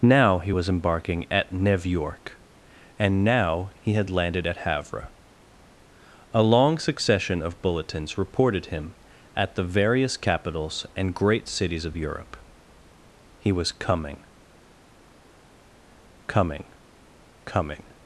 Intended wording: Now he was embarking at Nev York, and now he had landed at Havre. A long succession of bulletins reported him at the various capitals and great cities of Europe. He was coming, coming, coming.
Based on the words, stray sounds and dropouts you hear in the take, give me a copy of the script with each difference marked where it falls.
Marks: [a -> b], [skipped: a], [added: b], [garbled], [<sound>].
Now he was embarking at Nev York, and now he had landed at Havre. A long succession of bulletins reported him at the various capitals and great cities of Europe. He was coming, coming, coming.